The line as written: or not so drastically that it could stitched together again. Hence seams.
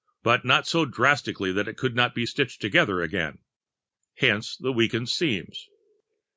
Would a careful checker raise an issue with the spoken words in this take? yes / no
yes